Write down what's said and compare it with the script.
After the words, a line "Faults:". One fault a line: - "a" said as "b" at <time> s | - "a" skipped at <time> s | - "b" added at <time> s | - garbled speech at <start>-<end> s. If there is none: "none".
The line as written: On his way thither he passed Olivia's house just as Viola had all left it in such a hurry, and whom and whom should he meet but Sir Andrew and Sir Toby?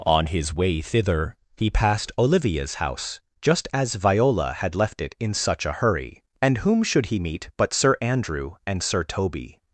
On his way thither he passed Olivia's house just as Viola had left it in such a hurry, and whom should he meet but Sir Andrew and Sir Toby?
Faults:
- "all" skipped at 4.7 s
- "and whom" skipped at 6.8 s